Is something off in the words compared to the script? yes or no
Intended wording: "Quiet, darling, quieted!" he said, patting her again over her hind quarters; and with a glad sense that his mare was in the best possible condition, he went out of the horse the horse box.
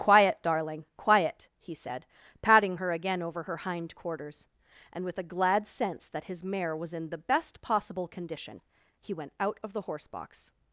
yes